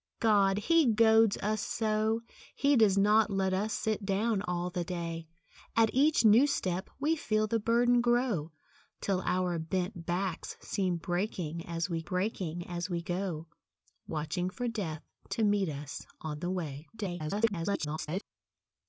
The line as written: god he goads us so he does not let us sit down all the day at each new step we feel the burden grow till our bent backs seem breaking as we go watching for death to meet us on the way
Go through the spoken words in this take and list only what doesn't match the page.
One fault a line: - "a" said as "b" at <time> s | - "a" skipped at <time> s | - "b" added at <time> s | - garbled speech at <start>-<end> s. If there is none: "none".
- "breaking as we" added at 12.0 s
- garbled speech at 16.9-18.2 s